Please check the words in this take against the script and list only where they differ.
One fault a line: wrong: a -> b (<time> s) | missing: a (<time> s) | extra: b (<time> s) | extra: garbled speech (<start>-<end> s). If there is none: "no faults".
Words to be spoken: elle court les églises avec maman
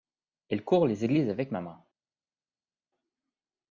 no faults